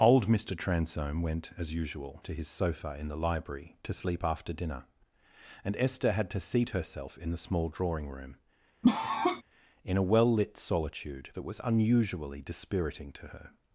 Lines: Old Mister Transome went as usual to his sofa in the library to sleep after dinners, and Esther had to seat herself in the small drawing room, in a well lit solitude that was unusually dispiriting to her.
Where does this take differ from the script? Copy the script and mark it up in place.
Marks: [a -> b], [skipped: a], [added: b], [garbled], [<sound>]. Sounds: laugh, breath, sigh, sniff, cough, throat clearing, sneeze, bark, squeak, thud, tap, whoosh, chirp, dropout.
Old Mister Transome went as usual to his sofa in the library to sleep after [dinners, -> dinner] and Esther had to seat herself in the small drawing room, [cough] in a well lit solitude that was unusually dispiriting to her.